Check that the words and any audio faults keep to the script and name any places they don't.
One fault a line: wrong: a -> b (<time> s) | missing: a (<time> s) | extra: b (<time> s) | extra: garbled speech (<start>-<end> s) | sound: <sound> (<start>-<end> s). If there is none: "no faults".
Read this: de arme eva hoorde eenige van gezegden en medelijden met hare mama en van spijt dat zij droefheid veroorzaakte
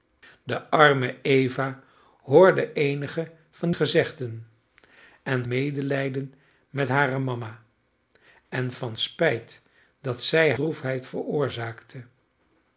no faults